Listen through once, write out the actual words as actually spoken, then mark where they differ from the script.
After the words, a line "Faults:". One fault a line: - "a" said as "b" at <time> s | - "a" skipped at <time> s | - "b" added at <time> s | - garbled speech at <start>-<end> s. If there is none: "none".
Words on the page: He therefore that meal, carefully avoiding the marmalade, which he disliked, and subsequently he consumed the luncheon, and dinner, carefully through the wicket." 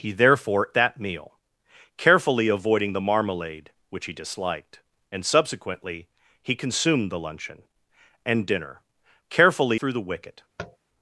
He therefore that meal, carefully avoiding the marmalade, which he disliked, and subsequently he consumed the luncheon, and dinner, carefully through the wicket."
Faults:
none